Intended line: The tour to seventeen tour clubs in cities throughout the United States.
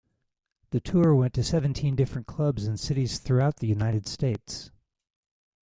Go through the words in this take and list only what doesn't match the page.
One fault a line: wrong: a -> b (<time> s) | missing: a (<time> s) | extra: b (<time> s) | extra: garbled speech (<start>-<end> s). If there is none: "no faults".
extra: went (1.1 s)
wrong: tour -> different (2.0 s)